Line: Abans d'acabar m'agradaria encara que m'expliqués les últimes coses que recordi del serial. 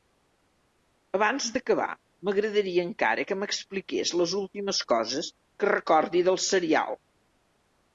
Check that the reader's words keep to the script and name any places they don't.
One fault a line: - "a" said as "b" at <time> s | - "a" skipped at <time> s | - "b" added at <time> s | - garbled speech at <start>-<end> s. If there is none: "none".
none